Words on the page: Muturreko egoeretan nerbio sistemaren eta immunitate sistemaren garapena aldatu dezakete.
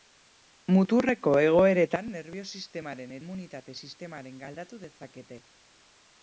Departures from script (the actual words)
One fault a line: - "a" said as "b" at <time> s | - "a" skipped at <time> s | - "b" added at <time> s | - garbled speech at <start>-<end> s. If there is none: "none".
- "eta" skipped at 3.1 s
- "garapena" skipped at 4.4 s